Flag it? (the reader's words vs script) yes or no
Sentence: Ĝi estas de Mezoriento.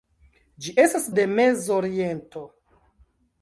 no